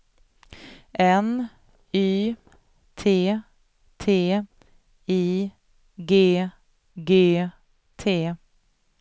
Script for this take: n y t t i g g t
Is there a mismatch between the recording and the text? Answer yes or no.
no